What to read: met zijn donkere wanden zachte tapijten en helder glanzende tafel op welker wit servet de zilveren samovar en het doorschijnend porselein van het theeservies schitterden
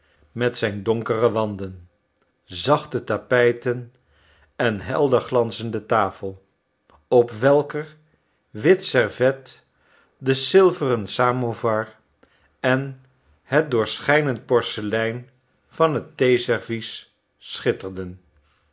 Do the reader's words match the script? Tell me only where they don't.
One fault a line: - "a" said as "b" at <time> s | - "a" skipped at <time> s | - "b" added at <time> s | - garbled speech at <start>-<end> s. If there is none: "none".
none